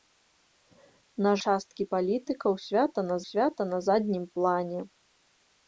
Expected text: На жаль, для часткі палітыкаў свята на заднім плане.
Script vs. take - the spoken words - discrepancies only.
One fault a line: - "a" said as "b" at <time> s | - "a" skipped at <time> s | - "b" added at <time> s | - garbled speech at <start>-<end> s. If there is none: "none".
- "жаль для часткі палітыкаў" said as "часткі палітыкаў свята на" at 1.5 s